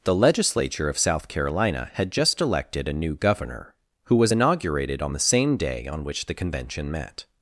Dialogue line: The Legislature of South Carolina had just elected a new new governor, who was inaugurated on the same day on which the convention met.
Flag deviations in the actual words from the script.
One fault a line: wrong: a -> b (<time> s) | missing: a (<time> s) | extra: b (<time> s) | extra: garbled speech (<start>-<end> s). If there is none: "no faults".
missing: new (3.1 s)